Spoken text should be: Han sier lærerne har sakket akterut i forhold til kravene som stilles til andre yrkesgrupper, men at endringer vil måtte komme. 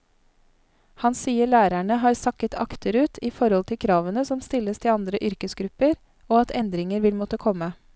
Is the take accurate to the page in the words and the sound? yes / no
no